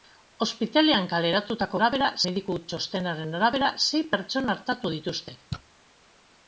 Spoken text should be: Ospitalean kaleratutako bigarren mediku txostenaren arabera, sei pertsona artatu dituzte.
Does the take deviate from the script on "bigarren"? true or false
true